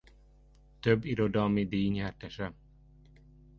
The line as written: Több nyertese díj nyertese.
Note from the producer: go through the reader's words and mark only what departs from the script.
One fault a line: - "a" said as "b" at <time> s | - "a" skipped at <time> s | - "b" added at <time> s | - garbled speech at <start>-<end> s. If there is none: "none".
- "nyertese" said as "irodalmi" at 1.1 s